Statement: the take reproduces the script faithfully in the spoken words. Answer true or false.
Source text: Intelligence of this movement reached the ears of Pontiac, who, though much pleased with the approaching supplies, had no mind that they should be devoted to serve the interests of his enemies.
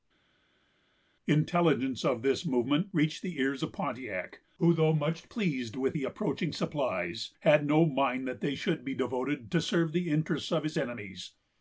true